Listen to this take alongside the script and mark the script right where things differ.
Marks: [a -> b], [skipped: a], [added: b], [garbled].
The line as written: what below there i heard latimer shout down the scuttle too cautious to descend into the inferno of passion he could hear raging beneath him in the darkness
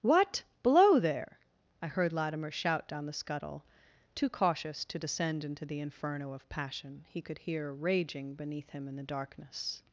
what below there i heard latimer shout down the scuttle too cautious to descend into the inferno of passion he could hear raging beneath him in the darkness